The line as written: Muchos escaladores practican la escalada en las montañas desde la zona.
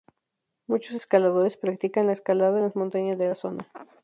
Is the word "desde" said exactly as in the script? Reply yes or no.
no